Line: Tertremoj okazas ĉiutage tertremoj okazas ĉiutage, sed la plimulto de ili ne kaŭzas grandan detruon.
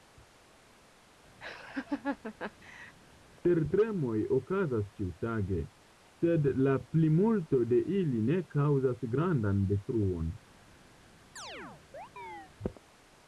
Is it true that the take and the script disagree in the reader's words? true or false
true